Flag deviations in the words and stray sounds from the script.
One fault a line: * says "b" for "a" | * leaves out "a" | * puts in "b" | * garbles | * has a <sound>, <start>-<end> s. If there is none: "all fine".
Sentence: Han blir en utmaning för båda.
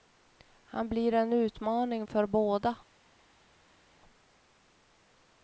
all fine